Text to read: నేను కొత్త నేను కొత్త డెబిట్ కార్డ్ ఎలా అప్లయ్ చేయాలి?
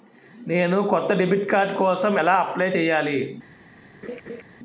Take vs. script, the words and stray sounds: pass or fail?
fail